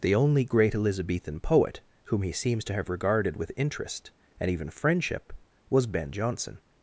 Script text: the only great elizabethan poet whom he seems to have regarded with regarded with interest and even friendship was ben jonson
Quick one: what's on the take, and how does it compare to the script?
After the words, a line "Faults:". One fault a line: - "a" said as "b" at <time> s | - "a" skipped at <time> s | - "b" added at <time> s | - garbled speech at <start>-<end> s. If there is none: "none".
the only great elizabethan poet whom he seems to have regarded with interest and even friendship was ben jonson
Faults:
- "regarded with" skipped at 3.5 s